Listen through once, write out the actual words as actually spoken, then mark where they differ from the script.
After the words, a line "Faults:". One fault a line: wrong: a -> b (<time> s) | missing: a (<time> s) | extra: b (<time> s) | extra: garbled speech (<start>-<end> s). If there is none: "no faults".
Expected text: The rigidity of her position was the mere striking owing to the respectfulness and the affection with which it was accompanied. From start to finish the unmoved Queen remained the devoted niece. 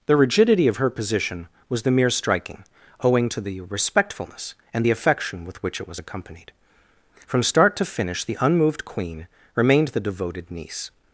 The rigidity of her position was the mere striking owing to the respectfulness and the affection with which it was accompanied. From start to finish the unmoved Queen remained the devoted niece.
Faults:
no faults